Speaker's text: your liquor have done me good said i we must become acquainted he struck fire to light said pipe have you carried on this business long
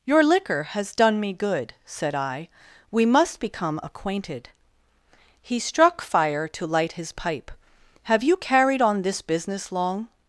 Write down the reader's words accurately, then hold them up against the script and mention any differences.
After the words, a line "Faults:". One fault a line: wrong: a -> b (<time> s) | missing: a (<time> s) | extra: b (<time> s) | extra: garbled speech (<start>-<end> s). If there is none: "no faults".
your liquor has done me good said i we must become acquainted he struck fire to light his pipe have you carried on this business long
Faults:
wrong: have -> has (0.6 s)
wrong: said -> his (6.9 s)